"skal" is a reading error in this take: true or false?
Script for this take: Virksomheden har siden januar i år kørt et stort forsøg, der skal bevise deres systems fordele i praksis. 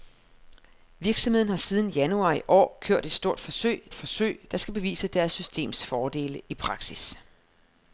false